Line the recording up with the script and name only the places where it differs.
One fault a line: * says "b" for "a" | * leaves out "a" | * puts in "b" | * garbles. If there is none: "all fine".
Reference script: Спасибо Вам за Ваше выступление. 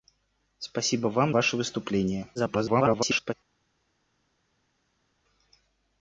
* leaves out "за"
* garbles